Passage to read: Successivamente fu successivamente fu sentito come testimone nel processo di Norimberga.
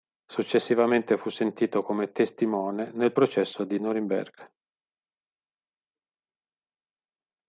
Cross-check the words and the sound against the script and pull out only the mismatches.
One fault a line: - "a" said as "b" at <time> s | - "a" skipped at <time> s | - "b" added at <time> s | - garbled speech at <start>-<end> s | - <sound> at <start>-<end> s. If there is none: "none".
- "successivamente fu" skipped at 1.3 s